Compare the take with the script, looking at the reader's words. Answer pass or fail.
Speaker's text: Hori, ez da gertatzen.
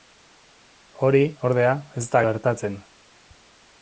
fail